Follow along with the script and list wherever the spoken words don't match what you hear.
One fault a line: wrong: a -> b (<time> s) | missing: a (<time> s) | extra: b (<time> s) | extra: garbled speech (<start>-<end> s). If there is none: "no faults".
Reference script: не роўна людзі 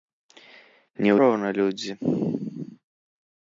no faults